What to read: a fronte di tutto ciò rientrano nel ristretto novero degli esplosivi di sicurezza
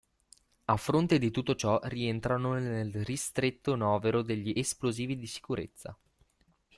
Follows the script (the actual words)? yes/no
yes